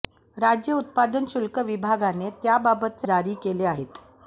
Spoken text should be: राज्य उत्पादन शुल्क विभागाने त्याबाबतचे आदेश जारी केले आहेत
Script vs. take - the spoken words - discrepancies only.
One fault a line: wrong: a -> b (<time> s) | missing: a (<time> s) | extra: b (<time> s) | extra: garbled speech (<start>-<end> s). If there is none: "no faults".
missing: आदेश (3.1 s)